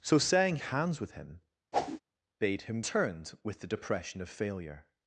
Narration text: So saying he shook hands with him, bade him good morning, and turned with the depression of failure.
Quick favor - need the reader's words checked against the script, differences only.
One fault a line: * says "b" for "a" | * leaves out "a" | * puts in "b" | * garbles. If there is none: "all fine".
* leaves out "he shook"
* leaves out "good morning and"